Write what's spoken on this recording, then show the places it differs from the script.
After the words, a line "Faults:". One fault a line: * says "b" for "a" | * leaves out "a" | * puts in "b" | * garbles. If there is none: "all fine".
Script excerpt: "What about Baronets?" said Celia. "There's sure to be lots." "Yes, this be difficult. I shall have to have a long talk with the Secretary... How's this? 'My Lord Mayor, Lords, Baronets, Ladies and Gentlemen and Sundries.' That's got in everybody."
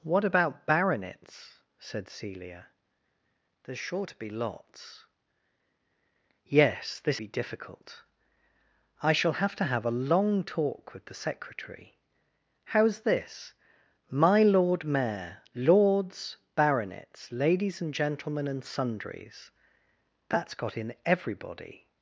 "What about Baronets?" said Celia. "There's sure to be lots." "Yes, this be difficult. I shall have to have a long talk with the Secretary... How's this? 'My Lord Mayor, Lords, Baronets, Ladies and Gentlemen and Sundries.' That's got in everybody."
Faults:
all fine